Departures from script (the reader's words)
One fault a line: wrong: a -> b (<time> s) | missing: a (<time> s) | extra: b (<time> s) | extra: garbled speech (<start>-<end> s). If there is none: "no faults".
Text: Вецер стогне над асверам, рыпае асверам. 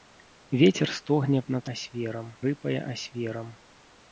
no faults